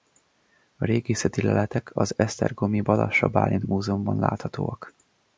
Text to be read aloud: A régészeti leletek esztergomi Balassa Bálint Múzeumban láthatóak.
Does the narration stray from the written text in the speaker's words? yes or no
yes